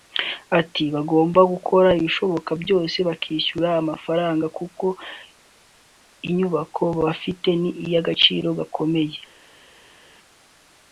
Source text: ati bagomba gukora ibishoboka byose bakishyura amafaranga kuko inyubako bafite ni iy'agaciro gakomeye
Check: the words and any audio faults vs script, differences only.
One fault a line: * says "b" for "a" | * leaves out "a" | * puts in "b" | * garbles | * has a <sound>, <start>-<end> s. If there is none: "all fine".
all fine